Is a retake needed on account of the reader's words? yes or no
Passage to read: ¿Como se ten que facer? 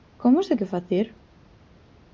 yes